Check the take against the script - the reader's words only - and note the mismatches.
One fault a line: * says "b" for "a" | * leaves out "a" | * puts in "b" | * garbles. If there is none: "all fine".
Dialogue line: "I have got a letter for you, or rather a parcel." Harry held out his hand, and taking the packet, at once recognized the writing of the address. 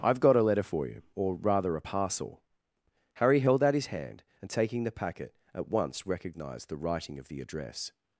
all fine